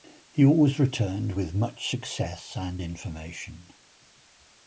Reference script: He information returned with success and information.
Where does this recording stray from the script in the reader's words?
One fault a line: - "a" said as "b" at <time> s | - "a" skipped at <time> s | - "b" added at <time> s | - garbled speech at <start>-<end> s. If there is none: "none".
- "information" said as "always" at 0.4 s
- "much" added at 1.6 s